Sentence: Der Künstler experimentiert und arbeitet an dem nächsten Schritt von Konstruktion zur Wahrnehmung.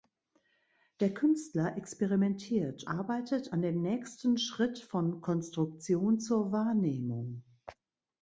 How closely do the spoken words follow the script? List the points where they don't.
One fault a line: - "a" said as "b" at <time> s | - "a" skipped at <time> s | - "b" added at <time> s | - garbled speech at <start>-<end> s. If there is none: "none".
- "und" skipped at 2.8 s